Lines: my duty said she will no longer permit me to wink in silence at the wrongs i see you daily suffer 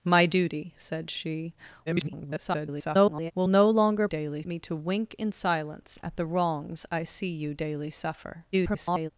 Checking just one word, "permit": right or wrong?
wrong